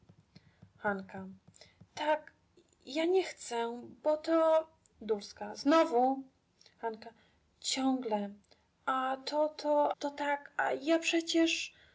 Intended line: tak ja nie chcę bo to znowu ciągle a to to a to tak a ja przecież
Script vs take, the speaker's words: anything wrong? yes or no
yes